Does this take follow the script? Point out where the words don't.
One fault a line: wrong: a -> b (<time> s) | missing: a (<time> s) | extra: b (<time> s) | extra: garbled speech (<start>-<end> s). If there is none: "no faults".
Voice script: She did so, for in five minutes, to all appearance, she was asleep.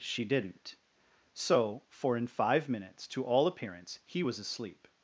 wrong: did -> didn't (0.2 s)
wrong: she -> he (4.0 s)